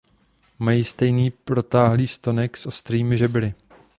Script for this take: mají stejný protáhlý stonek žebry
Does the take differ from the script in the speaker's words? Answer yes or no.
yes